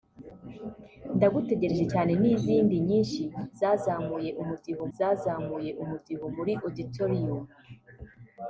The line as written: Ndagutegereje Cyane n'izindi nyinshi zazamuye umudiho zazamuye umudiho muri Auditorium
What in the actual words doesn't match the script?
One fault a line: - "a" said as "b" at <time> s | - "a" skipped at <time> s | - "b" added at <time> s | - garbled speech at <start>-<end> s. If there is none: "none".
none